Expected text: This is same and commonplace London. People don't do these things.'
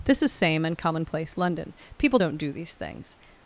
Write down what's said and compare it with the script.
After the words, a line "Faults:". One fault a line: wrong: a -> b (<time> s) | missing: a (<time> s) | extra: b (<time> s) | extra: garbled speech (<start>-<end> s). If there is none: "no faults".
This is same and commonplace London. People don't do these things.'
Faults:
no faults